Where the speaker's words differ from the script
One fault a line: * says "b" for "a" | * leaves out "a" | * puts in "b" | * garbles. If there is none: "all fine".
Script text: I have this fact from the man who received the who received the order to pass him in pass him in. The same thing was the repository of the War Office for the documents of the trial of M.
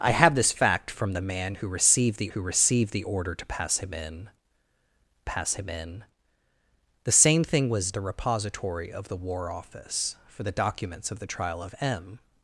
all fine